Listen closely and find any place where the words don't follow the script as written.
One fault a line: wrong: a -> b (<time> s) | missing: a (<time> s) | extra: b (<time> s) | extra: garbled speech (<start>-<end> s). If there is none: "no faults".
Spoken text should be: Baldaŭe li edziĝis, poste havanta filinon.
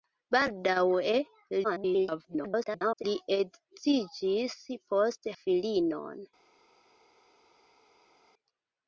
extra: garbled speech (1.6-3.0 s)
missing: havanta (5.3 s)